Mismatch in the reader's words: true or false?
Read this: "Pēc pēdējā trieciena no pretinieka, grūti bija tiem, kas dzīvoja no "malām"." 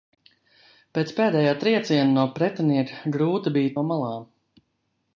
true